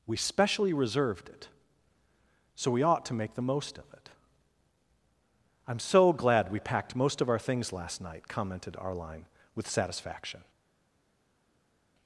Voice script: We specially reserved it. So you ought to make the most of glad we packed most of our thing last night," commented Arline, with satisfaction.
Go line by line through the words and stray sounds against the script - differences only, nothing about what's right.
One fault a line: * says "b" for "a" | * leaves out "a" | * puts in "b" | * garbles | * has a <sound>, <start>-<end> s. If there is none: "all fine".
* says "we" for "you"
* puts in "it I'm so"
* says "things" for "thing"